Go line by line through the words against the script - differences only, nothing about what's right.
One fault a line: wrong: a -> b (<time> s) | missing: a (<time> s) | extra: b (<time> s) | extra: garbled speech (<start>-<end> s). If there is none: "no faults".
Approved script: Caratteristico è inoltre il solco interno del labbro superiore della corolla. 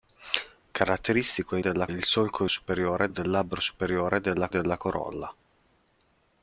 wrong: inoltre -> della (1.6 s)
wrong: interno -> superiore (2.5 s)
extra: della (4.5 s)